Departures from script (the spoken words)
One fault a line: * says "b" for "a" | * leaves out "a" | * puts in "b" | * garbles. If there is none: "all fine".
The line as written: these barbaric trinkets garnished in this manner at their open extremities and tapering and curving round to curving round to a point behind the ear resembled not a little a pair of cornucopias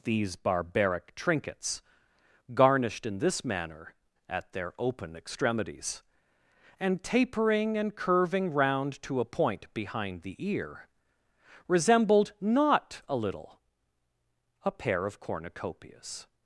* leaves out "curving round to"